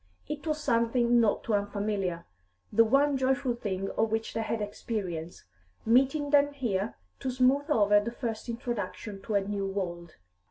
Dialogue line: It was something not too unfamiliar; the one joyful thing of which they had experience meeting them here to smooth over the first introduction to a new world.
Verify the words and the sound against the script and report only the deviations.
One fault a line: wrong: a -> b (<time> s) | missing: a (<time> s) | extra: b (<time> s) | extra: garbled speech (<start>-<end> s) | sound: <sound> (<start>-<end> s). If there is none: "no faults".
no faults